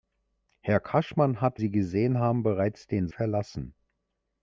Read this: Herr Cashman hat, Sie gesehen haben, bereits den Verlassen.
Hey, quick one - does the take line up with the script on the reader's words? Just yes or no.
yes